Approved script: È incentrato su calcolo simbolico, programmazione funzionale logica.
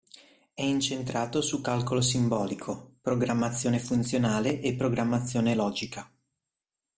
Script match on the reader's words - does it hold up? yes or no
no